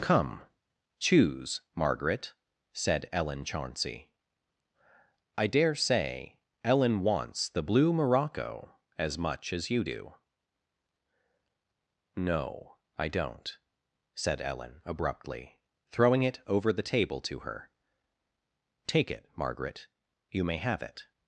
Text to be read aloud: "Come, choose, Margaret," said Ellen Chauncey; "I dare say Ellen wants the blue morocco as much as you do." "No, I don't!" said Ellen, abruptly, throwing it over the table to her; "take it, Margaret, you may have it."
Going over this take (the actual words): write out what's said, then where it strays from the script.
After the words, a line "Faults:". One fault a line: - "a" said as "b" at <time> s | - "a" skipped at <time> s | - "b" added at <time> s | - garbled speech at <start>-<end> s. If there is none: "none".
"Come, choose, Margaret," said Ellen Chauncey; "I dare say Ellen wants the blue morocco as much as you do." "No, I don't!" said Ellen, abruptly, throwing it over the table to her; "take it, Margaret, you may have it."
Faults:
none